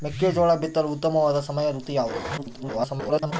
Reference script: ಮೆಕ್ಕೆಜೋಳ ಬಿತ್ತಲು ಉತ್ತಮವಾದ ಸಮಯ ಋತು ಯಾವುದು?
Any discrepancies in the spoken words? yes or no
yes